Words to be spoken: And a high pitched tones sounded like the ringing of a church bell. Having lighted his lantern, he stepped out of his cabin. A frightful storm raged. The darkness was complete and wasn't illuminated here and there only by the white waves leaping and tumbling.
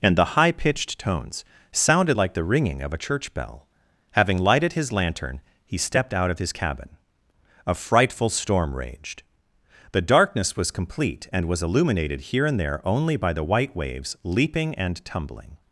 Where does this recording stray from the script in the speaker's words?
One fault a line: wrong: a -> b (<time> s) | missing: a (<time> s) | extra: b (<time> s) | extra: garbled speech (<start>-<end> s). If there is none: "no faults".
wrong: a -> the (0.1 s)
wrong: wasn't -> was (11.5 s)